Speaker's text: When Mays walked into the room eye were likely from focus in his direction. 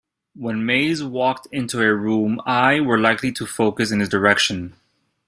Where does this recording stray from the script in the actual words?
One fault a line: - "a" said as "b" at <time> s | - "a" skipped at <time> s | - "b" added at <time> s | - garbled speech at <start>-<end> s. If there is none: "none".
- "the" said as "a" at 1.8 s
- "from" said as "to" at 3.3 s